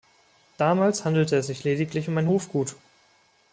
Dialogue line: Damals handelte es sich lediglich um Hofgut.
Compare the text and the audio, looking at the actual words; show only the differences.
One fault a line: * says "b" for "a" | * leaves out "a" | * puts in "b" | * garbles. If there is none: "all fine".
* puts in "ein"